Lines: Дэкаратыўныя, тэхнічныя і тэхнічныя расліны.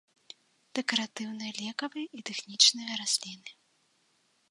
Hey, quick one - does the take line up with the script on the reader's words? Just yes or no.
no